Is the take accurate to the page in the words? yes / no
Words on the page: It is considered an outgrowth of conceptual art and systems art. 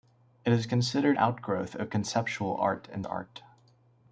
no